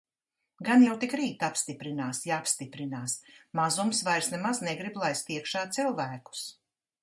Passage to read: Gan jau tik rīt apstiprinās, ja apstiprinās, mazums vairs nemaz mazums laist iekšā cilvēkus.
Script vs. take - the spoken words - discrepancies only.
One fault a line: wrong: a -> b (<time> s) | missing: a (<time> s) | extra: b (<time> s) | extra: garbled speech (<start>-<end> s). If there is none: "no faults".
wrong: mazums -> negrib (4.7 s)